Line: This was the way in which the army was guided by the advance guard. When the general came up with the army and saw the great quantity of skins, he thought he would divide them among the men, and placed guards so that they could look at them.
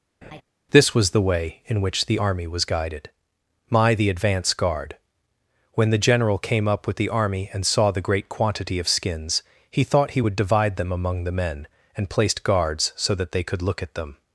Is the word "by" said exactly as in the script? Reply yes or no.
no